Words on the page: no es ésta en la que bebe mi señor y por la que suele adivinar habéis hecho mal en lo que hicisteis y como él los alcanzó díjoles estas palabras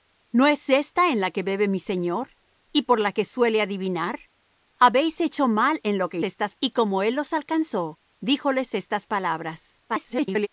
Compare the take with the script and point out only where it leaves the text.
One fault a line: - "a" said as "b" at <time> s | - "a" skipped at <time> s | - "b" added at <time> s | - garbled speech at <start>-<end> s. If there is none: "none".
- "hicisteis" said as "estas" at 6.2 s
- garbled speech at 9.9-10.5 s